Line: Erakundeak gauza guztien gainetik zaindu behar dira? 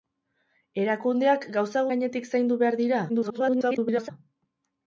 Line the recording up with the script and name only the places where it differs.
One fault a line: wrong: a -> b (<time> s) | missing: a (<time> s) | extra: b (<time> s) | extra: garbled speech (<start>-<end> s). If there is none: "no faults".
missing: guztien (1.9 s)
extra: garbled speech (3.1-4.1 s)